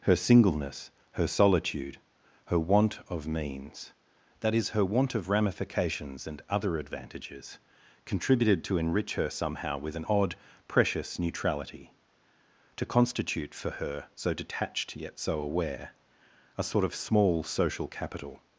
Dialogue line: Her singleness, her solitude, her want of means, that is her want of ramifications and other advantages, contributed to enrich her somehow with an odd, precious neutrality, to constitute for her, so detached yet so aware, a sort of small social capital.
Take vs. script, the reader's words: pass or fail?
pass